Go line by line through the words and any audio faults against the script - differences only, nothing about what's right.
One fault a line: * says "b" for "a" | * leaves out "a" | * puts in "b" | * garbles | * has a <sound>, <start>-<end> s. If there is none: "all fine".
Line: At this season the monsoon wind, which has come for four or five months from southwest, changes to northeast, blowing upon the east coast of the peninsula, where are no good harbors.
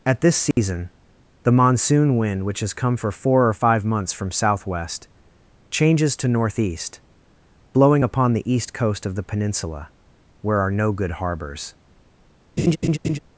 * has a dropout, 0.5-0.6 s
* has a laugh, 12.6-13.2 s